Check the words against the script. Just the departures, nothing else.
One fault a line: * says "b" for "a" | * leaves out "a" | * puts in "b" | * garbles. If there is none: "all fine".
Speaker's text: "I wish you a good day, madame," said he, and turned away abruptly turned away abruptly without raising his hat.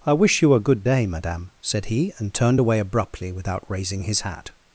* leaves out "turned away abruptly"